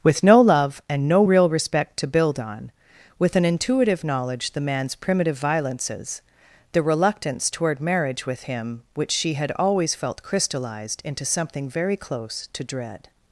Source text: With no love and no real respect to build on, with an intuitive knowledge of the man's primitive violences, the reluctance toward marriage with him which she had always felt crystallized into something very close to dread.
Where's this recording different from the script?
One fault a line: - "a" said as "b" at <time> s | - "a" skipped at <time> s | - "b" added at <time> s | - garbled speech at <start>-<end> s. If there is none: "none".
- "of" skipped at 4.5 s